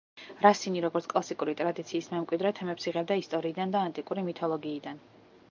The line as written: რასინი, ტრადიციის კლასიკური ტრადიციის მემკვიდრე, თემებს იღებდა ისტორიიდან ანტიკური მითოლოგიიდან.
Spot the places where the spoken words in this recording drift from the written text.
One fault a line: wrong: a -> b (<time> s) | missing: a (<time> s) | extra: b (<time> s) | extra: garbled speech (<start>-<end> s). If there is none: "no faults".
wrong: ტრადიციის -> როგორც (0.8 s)
extra: და (3.8 s)